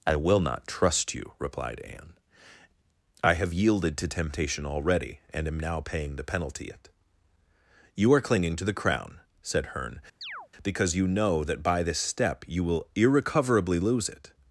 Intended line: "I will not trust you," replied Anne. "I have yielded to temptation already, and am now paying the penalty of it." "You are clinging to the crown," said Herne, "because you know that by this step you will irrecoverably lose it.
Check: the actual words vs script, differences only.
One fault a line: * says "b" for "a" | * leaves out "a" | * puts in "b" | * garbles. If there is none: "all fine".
* leaves out "of"